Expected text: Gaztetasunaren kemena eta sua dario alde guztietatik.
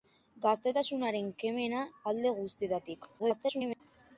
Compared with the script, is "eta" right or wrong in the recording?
wrong